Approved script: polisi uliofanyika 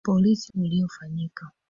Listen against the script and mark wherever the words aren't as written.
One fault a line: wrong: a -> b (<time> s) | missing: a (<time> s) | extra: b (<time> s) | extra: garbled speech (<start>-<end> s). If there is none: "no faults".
no faults